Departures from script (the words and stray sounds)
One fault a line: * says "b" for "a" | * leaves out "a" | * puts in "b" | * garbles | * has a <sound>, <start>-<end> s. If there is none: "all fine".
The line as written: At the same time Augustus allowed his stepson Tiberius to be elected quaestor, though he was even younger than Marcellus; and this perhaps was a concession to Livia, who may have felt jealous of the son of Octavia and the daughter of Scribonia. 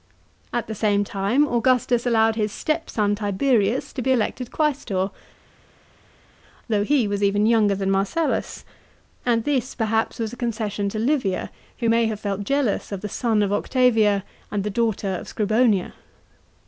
all fine